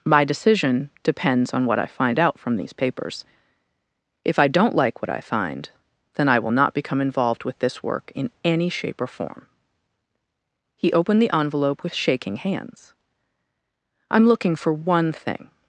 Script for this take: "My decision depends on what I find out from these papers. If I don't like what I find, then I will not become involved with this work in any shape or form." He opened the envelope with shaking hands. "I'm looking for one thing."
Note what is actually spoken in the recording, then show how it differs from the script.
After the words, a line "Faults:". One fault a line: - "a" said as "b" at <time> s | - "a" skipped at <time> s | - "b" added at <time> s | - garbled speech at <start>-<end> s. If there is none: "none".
"My decision depends on what I find out from these papers. If I don't like what I find, then I will not become involved with this work in any shape or form." He opened the envelope with shaking hands. "I'm looking for one thing."
Faults:
none